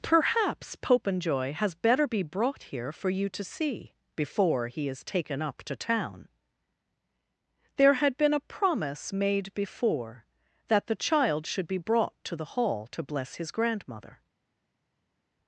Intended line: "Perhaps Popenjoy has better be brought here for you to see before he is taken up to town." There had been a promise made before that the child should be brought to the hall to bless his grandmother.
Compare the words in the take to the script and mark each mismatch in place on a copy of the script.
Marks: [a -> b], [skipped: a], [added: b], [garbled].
"Perhaps Popenjoy has better be brought here for you to see before he is taken up to town." There had been a promise made before that the child should be brought to the hall to bless his grandmother.